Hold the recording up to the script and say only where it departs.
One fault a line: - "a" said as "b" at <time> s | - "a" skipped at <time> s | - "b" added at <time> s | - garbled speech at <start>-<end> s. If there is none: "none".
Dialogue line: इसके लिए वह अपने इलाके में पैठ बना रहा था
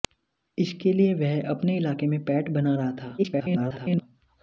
- garbled speech at 3.2-4.0 s